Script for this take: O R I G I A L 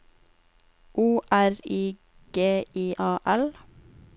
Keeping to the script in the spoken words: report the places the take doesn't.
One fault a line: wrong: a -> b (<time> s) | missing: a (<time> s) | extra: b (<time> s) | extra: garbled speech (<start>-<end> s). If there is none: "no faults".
no faults